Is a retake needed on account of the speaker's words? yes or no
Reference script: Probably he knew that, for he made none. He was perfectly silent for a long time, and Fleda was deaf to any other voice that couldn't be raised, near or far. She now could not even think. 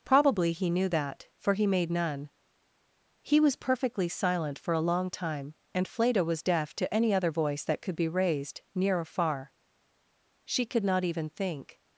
yes